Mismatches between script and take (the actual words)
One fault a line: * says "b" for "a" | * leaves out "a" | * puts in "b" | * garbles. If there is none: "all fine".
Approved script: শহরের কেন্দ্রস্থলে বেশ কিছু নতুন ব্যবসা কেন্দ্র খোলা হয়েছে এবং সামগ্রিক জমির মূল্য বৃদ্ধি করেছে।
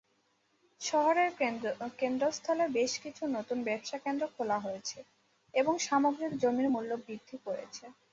all fine